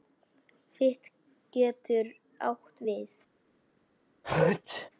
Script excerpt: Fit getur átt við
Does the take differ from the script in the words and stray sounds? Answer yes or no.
yes